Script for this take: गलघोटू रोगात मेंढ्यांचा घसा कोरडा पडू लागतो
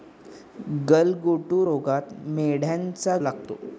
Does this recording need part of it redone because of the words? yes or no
yes